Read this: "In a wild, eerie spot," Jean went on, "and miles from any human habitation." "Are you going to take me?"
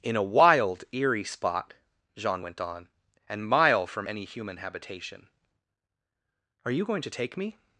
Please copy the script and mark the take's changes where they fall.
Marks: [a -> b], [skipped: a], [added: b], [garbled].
"In a wild, eerie spot," Jean went on, "and [miles -> mile] from any human habitation." "Are you going to take me?"